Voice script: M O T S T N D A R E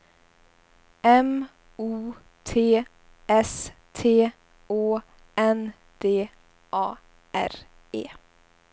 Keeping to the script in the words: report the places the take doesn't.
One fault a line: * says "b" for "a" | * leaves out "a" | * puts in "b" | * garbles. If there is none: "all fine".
* puts in "Å"